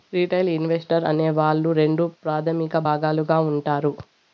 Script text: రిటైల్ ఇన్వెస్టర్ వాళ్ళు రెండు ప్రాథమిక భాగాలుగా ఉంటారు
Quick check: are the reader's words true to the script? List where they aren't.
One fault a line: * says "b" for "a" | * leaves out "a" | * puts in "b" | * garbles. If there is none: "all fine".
* puts in "అనే"